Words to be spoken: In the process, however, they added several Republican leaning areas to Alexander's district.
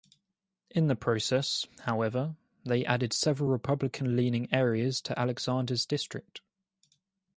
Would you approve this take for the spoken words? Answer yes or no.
yes